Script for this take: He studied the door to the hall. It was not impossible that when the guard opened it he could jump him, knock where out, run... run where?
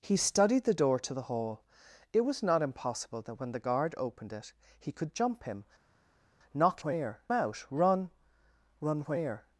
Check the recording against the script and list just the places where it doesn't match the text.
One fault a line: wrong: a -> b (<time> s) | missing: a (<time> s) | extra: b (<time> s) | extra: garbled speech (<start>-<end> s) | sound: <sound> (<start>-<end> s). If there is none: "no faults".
no faults